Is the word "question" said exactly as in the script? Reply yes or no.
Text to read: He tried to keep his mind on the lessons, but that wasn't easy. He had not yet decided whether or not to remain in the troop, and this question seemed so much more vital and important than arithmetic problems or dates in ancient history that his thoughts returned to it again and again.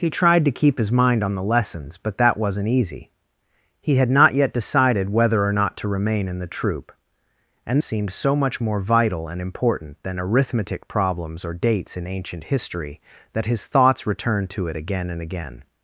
no